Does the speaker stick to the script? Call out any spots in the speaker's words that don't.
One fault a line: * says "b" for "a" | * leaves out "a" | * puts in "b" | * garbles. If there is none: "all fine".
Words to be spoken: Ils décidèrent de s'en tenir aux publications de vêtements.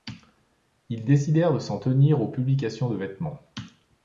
all fine